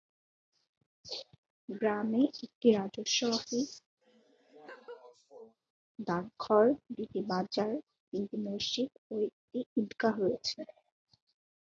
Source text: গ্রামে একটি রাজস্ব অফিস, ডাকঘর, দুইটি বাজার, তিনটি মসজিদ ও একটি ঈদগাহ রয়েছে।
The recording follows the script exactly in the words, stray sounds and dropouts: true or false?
false